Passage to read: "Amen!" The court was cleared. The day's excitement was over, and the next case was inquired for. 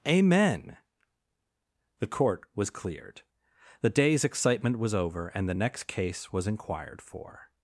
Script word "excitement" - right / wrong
right